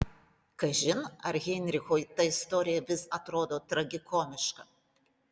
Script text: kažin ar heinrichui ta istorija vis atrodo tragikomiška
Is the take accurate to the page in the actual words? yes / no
yes